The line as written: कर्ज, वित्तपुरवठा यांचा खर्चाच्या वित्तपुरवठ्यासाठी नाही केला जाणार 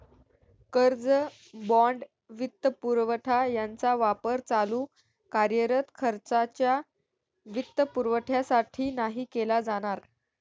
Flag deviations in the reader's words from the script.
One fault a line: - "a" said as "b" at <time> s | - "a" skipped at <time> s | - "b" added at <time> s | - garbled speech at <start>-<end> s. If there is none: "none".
- "बाँड" added at 1.7 s
- "वापर चालू कार्यरत" added at 4.0 s